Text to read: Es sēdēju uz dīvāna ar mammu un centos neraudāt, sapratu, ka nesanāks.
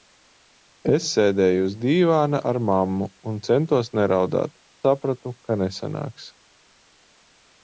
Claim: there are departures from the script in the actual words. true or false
false